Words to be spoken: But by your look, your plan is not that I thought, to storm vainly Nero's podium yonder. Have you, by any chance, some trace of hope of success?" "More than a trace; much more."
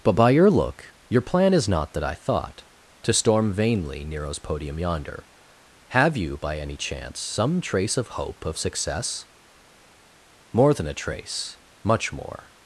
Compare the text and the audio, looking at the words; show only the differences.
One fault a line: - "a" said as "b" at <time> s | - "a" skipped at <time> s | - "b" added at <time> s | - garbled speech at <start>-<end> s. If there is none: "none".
none